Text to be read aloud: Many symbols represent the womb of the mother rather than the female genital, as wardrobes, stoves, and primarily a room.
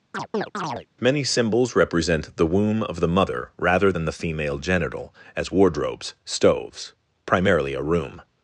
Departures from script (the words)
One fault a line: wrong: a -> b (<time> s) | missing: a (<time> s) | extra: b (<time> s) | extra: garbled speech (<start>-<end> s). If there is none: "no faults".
missing: and (6.9 s)